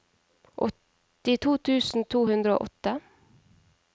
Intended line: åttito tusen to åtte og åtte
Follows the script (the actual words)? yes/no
no